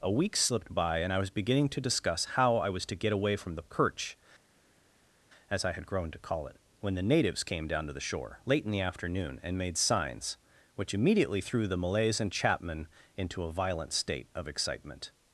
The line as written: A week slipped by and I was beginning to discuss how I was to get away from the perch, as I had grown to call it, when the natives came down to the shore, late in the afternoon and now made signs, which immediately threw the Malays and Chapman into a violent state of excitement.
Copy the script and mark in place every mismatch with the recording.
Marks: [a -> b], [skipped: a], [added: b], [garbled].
A week slipped by and I was beginning to discuss how I was to get away from the perch, as I had grown to call it, when the natives came down to the shore, late in the afternoon and [skipped: now] made signs, which immediately threw the Malays and Chapman into a violent state of excitement.